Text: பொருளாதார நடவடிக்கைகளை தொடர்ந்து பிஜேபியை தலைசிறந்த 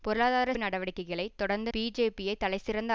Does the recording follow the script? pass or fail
pass